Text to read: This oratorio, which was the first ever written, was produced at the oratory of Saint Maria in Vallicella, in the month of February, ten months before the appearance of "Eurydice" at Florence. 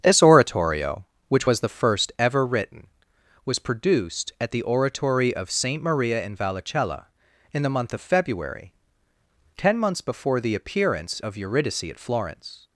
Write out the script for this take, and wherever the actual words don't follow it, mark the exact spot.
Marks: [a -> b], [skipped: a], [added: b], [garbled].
This oratorio, which was the first ever written, was produced at the oratory of Saint Maria in Vallicella, in the month of February, ten months before the appearance of "Eurydice" at Florence.